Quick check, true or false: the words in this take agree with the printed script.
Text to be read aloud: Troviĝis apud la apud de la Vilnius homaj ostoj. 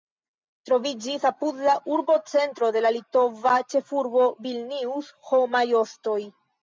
false